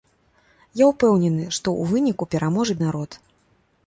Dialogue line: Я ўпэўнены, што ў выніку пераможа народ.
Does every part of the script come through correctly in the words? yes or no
yes